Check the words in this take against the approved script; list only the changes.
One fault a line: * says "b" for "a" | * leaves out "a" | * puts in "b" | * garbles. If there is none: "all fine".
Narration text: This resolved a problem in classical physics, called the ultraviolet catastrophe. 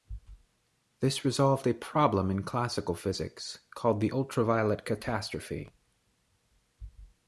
all fine